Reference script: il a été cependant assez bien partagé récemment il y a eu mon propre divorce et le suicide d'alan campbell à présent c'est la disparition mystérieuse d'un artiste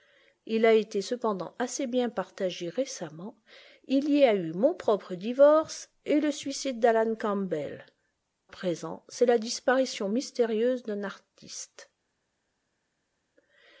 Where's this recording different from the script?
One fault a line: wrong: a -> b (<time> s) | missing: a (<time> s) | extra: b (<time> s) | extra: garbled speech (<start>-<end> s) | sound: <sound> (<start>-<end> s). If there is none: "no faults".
missing: à (7.8 s)